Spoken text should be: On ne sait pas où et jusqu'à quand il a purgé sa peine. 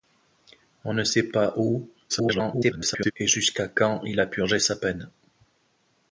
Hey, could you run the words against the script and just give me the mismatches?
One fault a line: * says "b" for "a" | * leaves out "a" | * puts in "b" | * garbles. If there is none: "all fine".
* garbles